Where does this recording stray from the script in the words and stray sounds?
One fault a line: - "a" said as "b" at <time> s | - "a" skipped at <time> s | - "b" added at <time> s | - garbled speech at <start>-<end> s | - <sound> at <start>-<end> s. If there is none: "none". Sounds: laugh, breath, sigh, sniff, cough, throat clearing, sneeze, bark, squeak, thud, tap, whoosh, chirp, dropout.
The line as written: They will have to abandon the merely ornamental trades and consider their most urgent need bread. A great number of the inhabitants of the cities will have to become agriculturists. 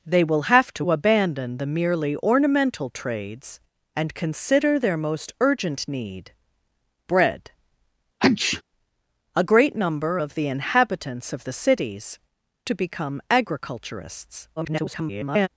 - sneeze at 8.2-8.6 s
- "will have" skipped at 12.2 s
- garbled speech at 14.6-15.5 s